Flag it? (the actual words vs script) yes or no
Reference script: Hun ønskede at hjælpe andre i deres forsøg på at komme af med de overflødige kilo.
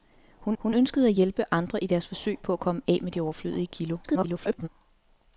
yes